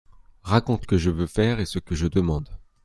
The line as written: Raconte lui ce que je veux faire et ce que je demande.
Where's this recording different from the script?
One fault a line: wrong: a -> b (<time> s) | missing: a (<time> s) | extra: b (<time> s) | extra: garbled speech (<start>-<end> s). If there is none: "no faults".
missing: lui ce (0.9 s)